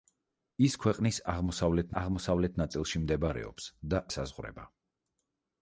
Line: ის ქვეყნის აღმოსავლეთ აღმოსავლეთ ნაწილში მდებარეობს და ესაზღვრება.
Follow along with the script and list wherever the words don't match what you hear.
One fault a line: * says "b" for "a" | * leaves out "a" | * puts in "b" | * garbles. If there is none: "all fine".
all fine